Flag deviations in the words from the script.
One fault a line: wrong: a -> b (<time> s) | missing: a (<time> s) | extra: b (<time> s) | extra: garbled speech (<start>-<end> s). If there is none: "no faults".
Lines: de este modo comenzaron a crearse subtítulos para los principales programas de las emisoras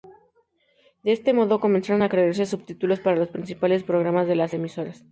no faults